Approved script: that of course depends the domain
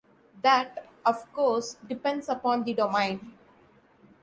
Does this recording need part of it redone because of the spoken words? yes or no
yes